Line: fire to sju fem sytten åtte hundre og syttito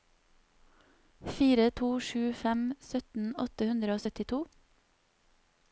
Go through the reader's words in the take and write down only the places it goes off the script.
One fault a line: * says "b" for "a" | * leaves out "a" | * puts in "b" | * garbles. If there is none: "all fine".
all fine